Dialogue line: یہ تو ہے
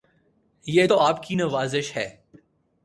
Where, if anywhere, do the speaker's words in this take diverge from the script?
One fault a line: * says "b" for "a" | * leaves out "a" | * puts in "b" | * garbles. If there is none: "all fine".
* puts in "آپ کی نوازش"